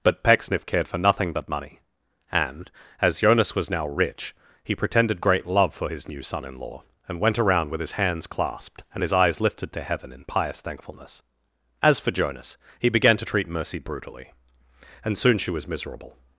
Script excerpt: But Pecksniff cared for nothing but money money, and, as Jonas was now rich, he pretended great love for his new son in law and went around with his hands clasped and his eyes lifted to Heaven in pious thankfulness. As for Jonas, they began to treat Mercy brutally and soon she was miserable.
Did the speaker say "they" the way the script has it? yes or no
no